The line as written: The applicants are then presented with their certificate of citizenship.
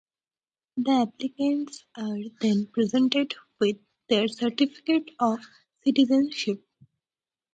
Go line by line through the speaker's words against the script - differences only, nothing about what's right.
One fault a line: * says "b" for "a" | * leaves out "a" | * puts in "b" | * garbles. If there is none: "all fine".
all fine